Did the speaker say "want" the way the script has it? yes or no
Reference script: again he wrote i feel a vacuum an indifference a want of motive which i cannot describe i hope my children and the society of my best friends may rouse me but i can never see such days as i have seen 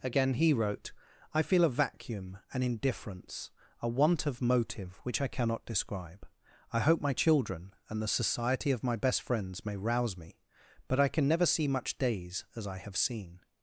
yes